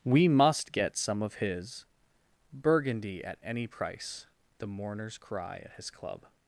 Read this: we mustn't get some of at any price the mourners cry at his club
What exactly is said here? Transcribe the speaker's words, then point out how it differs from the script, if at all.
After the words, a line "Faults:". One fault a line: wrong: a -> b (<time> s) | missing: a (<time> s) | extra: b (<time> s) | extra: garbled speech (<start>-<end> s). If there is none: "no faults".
we must get some of his burgundy at any price the mourners cry at his club
Faults:
wrong: mustn't -> must (0.3 s)
extra: his burgundy (1.4 s)